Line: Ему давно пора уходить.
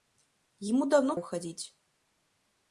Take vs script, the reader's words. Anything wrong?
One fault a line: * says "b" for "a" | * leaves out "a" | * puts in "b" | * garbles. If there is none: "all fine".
* leaves out "пора"